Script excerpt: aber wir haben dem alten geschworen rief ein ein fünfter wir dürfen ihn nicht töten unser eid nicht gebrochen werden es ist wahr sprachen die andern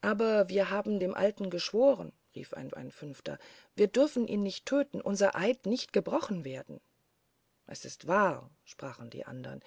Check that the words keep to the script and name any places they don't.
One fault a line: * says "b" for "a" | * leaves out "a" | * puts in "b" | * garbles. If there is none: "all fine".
all fine